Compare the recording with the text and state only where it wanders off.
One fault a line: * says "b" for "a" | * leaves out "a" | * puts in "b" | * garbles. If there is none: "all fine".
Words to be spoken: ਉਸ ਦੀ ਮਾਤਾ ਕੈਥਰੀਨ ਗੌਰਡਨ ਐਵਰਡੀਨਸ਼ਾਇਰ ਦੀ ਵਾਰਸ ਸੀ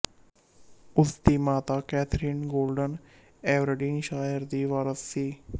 all fine